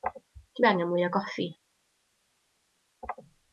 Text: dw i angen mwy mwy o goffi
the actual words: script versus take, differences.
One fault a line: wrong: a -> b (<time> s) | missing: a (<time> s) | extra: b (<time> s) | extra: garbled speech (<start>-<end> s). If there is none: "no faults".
missing: mwy (1.1 s)